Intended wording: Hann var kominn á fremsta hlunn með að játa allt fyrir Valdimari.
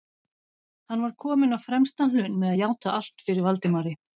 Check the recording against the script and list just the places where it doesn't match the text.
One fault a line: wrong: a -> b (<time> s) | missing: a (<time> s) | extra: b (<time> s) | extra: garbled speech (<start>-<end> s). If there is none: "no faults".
no faults